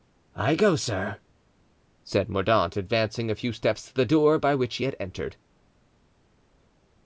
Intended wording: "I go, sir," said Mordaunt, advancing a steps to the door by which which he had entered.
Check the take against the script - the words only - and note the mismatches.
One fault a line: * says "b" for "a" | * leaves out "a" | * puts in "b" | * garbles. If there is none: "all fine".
* puts in "few"
* leaves out "which"